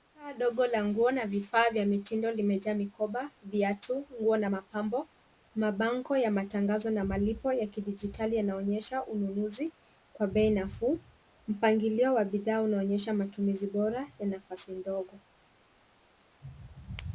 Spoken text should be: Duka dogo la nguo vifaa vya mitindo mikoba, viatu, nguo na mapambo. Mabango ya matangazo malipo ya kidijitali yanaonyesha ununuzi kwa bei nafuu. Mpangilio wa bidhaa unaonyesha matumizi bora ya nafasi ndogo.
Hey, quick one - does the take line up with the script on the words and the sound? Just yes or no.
no